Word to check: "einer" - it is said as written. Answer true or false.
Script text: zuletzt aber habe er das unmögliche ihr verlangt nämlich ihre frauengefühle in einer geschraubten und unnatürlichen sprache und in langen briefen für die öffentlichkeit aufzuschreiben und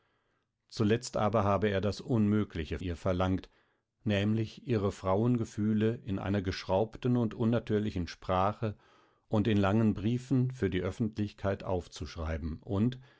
true